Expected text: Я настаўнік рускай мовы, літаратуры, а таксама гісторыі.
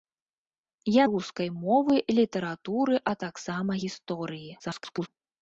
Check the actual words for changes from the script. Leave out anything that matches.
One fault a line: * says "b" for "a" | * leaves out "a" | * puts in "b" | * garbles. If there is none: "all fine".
* leaves out "настаўнік"
* garbles